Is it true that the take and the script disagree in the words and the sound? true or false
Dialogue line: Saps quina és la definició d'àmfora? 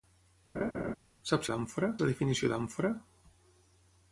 true